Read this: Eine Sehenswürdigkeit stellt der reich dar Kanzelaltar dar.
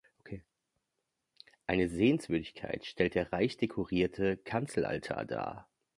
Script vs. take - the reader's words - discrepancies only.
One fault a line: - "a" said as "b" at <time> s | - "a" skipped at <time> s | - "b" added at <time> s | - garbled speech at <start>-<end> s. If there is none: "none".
- "dar" said as "dekorierte" at 3.5 s